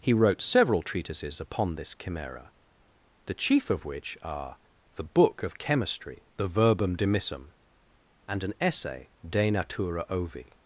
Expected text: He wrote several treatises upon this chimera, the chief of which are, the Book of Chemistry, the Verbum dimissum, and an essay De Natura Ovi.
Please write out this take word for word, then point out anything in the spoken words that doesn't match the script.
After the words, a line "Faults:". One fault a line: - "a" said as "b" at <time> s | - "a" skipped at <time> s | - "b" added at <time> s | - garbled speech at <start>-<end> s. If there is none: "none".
He wrote several treatises upon this chimera, the chief of which are, the Book of Chemistry, the Verbum dimissum, and an essay De Natura Ovi.
Faults:
none